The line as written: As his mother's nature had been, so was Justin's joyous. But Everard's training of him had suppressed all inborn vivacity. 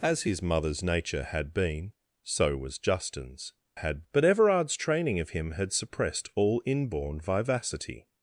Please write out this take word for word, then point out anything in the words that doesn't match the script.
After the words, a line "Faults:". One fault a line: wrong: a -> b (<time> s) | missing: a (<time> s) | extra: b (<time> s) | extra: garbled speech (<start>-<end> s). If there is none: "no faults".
As his mother's nature had been, so was Justin's had. But Everard's training of him had suppressed all inborn vivacity.
Faults:
wrong: joyous -> had (3.7 s)